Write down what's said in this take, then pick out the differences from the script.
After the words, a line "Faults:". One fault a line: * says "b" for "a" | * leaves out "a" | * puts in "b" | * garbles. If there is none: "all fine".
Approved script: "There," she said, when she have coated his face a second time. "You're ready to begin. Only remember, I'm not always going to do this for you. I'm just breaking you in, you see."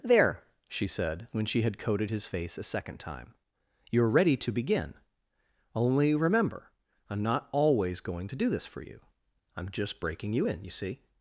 "There," she said, when she had coated his face a second time. "You're ready to begin. Only remember, I'm not always going to do this for you. I'm just breaking you in, you see."
Faults:
* says "had" for "have"